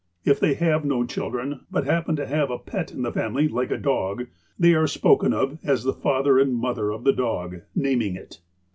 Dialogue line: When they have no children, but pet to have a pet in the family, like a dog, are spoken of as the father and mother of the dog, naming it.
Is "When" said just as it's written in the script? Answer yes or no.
no